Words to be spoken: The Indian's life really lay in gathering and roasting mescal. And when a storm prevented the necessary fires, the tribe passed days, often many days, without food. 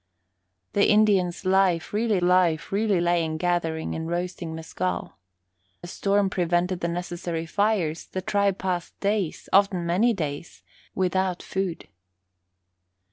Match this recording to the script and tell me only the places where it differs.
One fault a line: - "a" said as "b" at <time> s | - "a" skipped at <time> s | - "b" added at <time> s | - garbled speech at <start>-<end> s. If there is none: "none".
- "life really" added at 2.2 s
- "And when" skipped at 5.2 s